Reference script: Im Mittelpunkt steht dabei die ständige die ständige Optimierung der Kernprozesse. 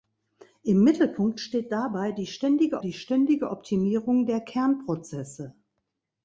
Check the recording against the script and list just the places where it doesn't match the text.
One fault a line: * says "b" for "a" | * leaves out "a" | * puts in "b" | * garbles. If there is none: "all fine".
all fine